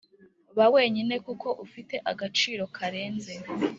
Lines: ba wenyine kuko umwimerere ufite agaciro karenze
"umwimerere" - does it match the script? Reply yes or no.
no